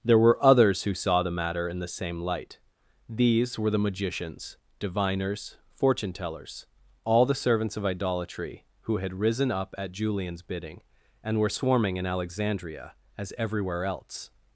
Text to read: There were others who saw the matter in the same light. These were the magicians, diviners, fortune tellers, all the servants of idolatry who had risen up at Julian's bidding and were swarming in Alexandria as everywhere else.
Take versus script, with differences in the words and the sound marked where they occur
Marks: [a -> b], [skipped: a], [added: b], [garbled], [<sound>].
There were others who saw the matter in the same light. These were the magicians, diviners, fortune tellers, all the servants of idolatry who had risen up at Julian's bidding and were swarming in Alexandria as everywhere else.